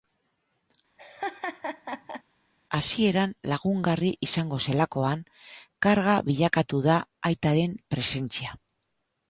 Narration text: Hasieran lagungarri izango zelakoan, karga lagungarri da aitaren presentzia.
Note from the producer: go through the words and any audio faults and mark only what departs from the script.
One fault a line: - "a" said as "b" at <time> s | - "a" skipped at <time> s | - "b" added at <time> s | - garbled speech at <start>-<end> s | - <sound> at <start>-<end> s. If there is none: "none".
- laugh at 1.0-2.2 s
- "lagungarri" said as "bilakatu" at 6.3 s